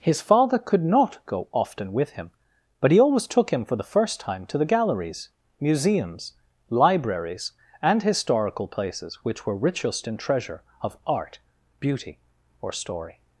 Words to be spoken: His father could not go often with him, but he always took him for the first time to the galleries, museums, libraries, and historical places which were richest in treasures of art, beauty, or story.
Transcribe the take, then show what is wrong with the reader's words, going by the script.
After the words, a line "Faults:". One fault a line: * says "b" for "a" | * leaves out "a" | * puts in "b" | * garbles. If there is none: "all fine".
His father could not go often with him, but he always took him for the first time to the galleries, museums, libraries, and historical places which were richest in treasure of art, beauty, or story.
Faults:
* says "treasure" for "treasures"